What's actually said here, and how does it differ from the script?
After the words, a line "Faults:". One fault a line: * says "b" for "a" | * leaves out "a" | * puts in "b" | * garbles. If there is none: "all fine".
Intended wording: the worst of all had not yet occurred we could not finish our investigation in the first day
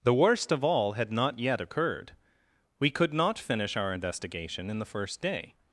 the worst of all had not yet occurred we could not finish our investigation in the first day
Faults:
all fine